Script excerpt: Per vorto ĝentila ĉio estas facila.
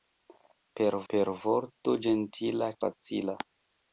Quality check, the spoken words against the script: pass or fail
fail